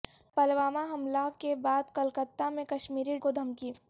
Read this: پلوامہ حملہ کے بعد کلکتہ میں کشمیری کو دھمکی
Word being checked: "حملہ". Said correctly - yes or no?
yes